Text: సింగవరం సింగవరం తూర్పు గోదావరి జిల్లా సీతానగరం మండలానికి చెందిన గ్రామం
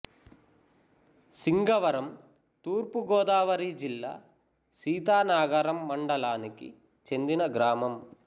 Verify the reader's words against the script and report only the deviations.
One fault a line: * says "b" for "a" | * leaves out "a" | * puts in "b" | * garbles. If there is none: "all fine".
* leaves out "సింగవరం"